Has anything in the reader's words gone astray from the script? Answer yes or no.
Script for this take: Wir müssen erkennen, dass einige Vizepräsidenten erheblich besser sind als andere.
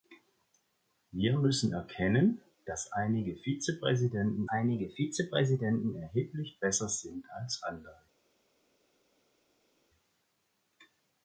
yes